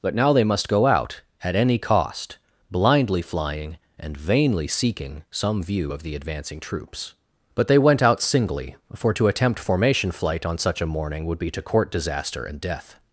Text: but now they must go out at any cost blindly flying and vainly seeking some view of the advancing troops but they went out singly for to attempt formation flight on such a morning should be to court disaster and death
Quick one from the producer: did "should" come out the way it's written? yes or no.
no